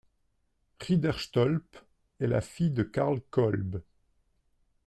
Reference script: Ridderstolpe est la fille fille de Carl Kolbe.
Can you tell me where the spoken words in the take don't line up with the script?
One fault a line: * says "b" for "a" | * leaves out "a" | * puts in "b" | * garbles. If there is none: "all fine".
* leaves out "fille"